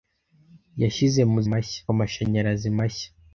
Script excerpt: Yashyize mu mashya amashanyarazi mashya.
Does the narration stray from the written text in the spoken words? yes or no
no